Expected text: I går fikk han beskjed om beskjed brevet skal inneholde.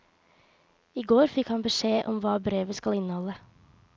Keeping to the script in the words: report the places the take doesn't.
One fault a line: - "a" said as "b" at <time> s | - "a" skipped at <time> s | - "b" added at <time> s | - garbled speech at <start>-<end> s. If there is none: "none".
- "beskjed" said as "hva" at 2.2 s